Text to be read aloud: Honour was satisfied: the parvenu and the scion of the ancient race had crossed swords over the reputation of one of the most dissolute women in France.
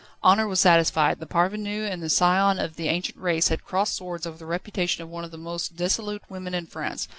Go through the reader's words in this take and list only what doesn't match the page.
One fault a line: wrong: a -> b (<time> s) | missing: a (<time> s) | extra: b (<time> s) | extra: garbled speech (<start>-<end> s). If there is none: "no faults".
no faults